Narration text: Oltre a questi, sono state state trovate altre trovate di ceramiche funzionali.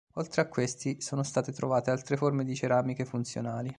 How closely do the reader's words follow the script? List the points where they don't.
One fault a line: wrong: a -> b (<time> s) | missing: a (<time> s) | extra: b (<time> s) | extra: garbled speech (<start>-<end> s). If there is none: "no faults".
missing: state (1.5 s)
wrong: trovate -> forme (2.2 s)